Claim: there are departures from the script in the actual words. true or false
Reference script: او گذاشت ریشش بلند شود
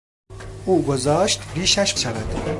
true